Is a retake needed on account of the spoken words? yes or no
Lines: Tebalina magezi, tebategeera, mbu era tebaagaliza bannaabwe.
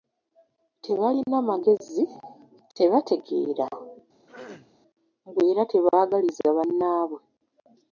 no